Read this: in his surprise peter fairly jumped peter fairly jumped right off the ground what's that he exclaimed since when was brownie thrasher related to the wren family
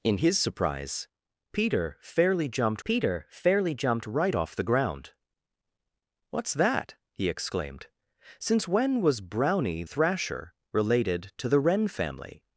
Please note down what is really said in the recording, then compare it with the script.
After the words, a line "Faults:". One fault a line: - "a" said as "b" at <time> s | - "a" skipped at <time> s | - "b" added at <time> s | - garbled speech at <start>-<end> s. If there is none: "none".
in his surprise peter fairly jumped peter fairly jumped right off the ground what's that he exclaimed since when was brownie thrasher related to the wren family
Faults:
none